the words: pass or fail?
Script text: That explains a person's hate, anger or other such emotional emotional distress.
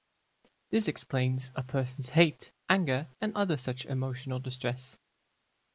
fail